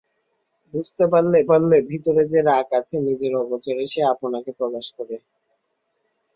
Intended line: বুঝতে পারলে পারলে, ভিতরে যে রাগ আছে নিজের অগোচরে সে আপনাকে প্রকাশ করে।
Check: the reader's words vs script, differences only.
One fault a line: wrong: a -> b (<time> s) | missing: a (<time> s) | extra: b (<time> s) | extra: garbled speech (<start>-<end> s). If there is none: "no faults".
no faults